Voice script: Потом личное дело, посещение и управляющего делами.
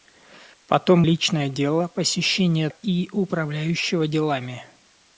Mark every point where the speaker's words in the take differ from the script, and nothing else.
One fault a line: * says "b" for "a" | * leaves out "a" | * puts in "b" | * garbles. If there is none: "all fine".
all fine